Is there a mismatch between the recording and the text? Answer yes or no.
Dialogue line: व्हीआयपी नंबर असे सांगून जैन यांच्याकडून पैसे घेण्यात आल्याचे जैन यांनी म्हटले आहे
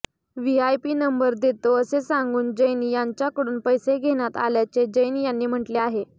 yes